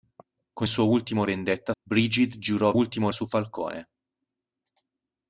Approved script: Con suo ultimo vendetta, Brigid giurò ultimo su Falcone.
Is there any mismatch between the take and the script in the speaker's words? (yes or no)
no